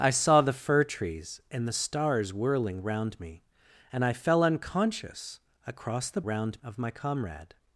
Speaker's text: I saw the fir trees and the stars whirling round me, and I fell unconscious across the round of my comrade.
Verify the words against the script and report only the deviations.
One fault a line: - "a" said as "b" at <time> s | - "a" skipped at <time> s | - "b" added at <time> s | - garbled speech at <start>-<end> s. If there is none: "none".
none